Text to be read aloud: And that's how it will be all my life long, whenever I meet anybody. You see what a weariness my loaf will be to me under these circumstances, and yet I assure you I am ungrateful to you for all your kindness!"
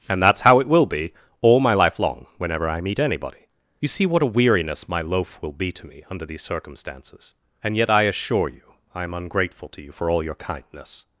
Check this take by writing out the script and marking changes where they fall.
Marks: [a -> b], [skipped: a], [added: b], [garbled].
And that's how it will be all my life long, whenever I meet anybody. You see what a weariness my loaf will be to me under these circumstances, and yet I assure you I am ungrateful to you for all your kindness!"